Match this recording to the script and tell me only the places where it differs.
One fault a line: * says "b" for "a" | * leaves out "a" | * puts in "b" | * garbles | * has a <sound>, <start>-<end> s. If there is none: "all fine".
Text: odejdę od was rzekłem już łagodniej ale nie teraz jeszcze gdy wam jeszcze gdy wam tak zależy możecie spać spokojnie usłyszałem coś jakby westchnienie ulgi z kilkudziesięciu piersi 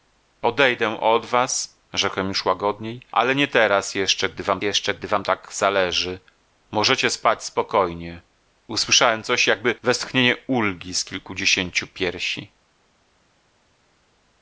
all fine